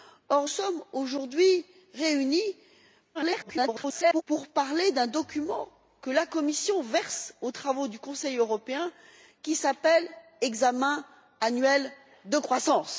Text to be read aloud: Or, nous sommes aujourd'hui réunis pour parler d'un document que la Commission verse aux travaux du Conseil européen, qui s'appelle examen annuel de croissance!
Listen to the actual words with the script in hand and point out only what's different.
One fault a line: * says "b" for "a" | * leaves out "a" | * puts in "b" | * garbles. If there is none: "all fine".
* leaves out "nous"
* garbles